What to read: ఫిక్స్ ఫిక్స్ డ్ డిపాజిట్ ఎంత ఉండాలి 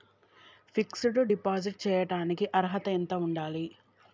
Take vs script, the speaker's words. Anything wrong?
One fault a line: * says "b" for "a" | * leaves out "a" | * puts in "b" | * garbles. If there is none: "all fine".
* leaves out "ఫిక్స్"
* puts in "చేయటానికి అర్హత"